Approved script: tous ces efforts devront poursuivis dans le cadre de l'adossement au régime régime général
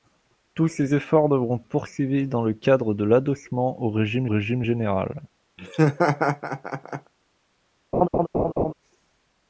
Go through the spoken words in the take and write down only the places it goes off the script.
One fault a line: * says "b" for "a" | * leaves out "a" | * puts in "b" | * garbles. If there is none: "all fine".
all fine